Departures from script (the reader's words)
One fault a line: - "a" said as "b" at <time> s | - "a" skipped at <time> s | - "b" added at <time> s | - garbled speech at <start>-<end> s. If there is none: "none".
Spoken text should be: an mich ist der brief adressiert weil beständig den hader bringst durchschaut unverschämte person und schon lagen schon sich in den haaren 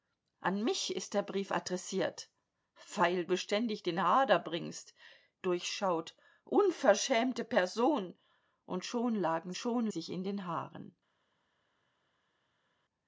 none